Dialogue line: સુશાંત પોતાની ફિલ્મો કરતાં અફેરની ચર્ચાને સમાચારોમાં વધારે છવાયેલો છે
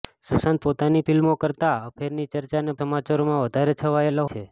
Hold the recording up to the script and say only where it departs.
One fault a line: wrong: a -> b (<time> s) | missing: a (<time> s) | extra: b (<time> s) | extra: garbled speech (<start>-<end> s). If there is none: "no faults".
no faults